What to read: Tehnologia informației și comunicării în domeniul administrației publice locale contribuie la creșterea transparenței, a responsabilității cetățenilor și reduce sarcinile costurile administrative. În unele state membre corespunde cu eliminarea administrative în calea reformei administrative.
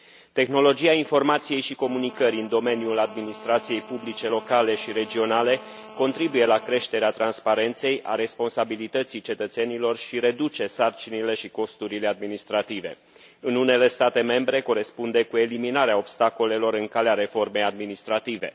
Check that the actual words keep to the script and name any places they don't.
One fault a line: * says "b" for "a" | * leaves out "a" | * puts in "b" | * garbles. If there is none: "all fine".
* puts in "și regionale"
* puts in "și"
* says "obstacolelor" for "administrative"